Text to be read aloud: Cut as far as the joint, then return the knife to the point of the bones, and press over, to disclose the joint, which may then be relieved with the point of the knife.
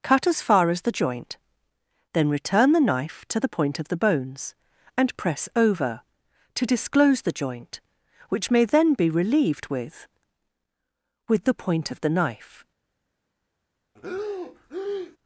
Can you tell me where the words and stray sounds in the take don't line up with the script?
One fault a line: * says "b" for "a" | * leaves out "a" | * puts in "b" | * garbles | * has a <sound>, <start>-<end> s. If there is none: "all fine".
* puts in "with"
* has a breath, 14.0-15.2 s